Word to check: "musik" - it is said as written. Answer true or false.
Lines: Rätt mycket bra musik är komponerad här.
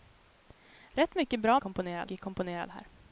false